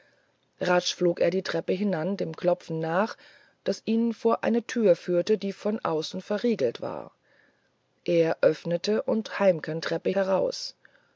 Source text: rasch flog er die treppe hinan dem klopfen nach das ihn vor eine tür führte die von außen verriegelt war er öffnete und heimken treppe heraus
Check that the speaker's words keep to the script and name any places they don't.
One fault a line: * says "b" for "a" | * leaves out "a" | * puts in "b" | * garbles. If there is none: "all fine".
all fine